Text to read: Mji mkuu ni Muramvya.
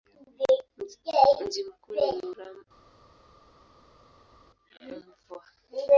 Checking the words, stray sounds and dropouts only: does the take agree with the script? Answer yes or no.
yes